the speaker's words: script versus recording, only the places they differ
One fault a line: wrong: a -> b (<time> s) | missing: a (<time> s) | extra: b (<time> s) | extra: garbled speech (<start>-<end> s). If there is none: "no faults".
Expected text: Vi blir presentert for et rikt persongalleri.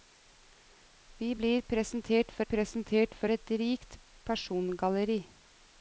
extra: presentert for (2.5 s)